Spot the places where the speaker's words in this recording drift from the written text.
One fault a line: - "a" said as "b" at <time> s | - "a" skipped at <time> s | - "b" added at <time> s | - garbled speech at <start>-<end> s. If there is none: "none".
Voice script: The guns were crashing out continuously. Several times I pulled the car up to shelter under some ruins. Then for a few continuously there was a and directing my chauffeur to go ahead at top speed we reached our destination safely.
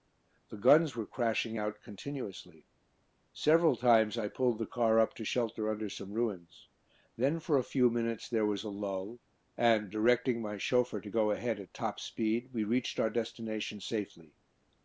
- "continuously" said as "minutes" at 7.9 s
- "lull" added at 8.7 s